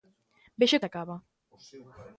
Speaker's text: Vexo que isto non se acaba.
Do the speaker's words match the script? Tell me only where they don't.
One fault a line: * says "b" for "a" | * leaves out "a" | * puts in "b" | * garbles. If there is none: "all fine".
* leaves out "que isto non"